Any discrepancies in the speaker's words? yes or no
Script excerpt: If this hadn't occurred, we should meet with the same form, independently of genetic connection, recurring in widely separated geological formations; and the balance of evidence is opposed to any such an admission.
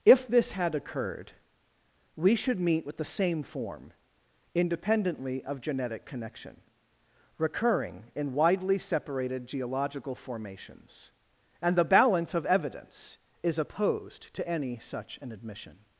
yes